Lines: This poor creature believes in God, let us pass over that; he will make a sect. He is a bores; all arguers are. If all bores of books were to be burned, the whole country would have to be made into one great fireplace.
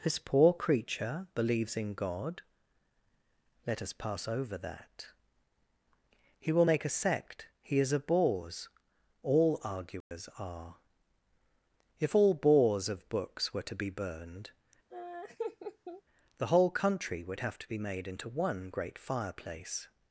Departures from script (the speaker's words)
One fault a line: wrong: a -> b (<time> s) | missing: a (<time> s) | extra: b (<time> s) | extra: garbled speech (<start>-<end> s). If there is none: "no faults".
no faults